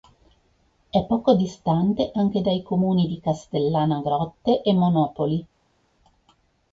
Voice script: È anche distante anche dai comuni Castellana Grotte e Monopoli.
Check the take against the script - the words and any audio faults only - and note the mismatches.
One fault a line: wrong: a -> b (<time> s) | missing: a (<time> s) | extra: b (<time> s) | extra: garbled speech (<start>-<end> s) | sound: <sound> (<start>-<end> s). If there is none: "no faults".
wrong: anche -> poco (1.0 s)
extra: di (3.0 s)